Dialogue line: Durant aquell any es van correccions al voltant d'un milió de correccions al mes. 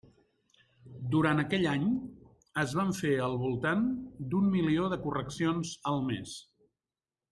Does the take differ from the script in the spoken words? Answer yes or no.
yes